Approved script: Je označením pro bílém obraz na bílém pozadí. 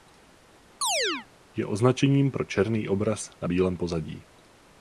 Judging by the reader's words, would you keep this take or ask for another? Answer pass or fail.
fail